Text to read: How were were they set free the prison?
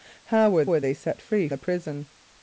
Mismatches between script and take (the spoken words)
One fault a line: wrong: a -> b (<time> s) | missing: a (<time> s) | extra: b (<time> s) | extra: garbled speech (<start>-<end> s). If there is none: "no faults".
no faults